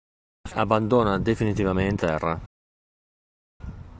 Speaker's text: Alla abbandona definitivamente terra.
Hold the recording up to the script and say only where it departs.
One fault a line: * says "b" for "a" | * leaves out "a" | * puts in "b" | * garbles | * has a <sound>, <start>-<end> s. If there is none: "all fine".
all fine